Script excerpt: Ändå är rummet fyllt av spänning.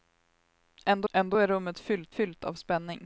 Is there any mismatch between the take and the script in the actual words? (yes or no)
yes